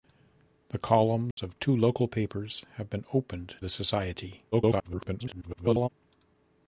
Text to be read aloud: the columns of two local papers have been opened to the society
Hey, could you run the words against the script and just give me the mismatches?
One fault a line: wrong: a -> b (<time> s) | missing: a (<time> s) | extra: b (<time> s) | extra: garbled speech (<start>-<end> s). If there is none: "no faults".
missing: to (3.6 s)
extra: garbled speech (4.5-5.9 s)